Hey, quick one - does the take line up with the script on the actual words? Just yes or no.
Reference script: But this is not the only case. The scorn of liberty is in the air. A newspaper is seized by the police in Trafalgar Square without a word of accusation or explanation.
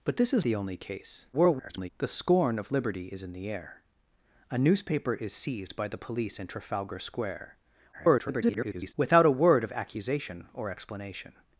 no